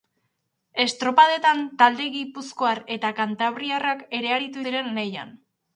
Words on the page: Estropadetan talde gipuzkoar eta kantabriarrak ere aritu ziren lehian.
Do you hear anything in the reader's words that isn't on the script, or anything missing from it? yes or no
no